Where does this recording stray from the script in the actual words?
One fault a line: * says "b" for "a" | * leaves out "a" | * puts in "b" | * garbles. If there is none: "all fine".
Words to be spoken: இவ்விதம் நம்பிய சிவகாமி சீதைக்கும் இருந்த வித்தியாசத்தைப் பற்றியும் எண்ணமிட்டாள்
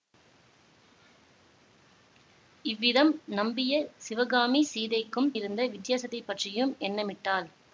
all fine